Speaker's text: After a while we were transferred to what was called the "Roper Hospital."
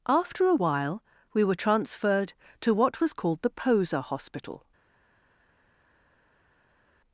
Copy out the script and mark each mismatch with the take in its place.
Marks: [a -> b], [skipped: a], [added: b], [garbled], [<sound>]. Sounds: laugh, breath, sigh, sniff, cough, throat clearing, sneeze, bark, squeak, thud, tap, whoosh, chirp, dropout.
After a while we were transferred to what was called the ["Roper -> Poser] Hospital."